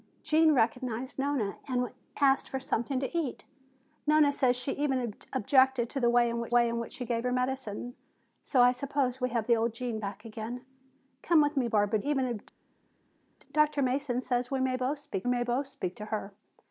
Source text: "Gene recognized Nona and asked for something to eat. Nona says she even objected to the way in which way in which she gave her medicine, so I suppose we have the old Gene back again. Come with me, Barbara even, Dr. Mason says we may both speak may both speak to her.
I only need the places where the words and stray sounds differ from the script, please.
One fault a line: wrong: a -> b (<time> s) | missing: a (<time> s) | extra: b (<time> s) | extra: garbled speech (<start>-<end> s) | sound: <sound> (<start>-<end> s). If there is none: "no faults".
no faults